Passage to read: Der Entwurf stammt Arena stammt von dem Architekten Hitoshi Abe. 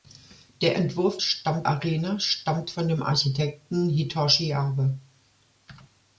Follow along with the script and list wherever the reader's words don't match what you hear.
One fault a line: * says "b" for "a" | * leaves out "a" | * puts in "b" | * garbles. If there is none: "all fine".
all fine